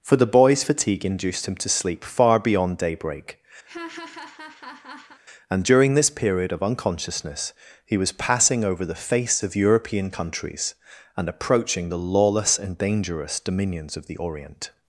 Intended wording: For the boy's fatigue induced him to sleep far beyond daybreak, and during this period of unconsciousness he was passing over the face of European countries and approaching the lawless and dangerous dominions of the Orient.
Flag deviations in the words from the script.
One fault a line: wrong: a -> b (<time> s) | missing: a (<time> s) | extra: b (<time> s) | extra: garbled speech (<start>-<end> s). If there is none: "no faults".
no faults